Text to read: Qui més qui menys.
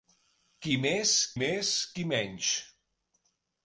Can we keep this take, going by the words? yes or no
no